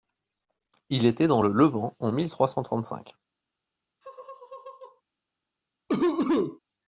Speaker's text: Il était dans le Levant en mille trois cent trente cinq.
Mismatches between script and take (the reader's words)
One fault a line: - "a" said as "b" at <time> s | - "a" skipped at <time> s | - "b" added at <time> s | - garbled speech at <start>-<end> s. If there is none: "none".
none